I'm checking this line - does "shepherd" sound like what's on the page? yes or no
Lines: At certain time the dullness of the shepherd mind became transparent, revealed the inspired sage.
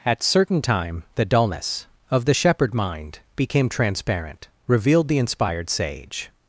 yes